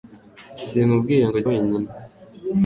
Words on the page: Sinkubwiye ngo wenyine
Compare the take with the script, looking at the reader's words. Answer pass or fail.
pass